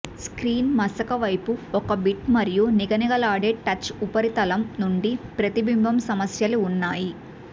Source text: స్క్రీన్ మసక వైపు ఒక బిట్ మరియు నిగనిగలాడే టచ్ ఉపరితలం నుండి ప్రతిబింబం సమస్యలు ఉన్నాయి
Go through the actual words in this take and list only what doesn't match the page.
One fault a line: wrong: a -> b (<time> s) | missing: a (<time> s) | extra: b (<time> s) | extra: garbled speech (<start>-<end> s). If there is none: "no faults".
no faults